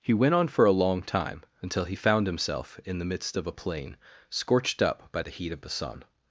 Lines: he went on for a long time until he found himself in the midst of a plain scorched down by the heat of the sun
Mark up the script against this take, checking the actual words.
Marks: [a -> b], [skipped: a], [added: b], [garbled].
he went on for a long time until he found himself in the midst of a plain scorched [down -> up] by the heat of the sun